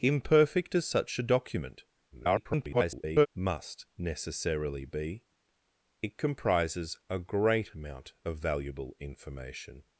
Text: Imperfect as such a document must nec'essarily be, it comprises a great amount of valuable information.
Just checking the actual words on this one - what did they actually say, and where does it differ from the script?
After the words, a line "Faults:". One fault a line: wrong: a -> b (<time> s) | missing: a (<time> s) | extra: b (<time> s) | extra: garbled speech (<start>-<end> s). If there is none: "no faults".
Imperfect as such a document [garbled] must nec'essarily be, it comprises a great amount of valuable information.
Faults:
extra: garbled speech (2.1-3.3 s)